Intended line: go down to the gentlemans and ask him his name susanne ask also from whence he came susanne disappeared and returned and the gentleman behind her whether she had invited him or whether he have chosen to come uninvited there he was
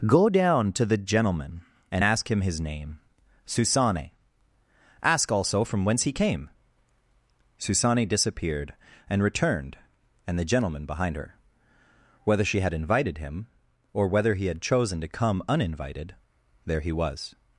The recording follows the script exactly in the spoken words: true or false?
false